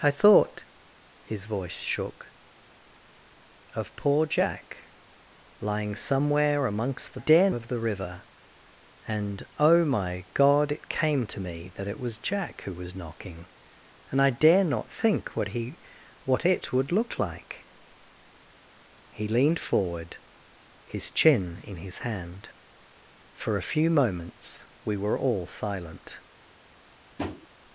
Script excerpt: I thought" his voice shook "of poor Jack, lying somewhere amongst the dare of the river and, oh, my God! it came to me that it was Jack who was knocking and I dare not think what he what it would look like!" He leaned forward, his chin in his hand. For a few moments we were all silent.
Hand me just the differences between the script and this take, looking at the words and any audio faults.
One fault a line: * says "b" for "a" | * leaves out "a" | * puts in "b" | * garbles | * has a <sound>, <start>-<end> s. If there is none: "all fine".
* has a tap, 27.2-27.5 s